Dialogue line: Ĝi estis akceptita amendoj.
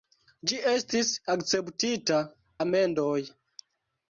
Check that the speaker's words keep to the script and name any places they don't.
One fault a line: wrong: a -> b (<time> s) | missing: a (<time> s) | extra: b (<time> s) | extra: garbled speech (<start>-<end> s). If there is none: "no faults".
no faults